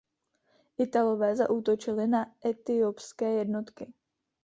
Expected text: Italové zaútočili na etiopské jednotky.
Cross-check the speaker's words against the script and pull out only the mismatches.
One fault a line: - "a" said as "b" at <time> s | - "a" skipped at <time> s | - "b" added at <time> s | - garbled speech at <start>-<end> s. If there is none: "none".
none